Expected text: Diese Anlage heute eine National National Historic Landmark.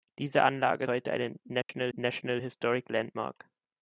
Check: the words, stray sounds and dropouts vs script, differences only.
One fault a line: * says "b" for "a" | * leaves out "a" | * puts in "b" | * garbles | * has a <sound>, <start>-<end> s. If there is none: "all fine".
* has a dropout, 1.6-1.7 s